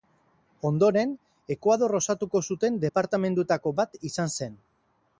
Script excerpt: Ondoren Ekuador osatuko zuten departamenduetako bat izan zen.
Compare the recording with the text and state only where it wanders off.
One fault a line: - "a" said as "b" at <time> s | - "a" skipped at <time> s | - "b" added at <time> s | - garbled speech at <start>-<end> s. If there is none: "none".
none